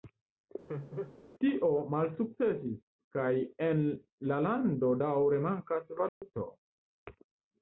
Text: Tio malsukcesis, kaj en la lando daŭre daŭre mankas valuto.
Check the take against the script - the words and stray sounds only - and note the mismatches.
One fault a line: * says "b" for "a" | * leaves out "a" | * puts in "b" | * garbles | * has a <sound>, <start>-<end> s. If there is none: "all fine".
* has a laugh, 0.7-1.2 s
* leaves out "daŭre"
* has a dropout, 6.1-6.2 s